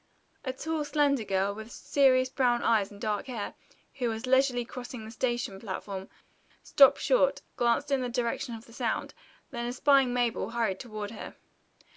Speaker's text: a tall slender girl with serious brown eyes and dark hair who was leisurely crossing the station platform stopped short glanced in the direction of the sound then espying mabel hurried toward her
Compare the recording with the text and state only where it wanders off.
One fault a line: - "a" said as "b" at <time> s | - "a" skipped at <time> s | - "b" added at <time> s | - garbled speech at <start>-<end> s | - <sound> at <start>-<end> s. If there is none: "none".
none